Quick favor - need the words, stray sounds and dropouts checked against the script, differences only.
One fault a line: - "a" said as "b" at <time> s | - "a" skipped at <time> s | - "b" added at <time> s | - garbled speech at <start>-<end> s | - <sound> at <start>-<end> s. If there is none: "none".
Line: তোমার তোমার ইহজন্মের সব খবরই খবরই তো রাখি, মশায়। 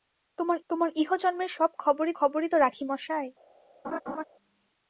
- laugh at 3.8-4.2 s